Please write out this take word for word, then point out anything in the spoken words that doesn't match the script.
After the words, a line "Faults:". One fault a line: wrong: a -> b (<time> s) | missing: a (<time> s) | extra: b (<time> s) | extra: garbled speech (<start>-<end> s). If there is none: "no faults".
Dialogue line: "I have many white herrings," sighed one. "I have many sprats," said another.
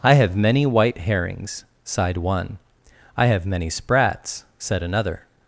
"I have many white herrings," sighed one. "I have many sprats," said another.
Faults:
no faults